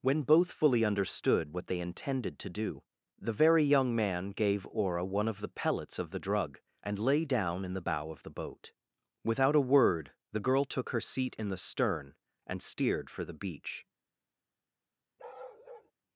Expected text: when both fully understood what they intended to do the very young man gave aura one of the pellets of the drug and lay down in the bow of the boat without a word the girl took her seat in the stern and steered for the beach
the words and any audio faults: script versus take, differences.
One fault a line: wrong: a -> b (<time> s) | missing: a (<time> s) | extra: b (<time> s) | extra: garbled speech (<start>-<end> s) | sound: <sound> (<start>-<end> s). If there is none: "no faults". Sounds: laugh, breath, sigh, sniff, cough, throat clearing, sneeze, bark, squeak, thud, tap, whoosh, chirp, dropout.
sound: bark (15.2-15.9 s)